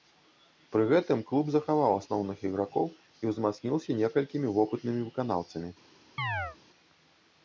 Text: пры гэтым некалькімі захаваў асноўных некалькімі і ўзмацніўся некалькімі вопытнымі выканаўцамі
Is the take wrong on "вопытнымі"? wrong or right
right